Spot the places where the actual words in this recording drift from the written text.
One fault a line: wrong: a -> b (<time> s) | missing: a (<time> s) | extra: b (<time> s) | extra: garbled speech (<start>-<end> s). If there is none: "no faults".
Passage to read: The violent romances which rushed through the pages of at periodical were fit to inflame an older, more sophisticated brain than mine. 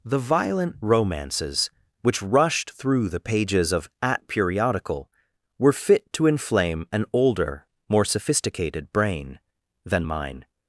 no faults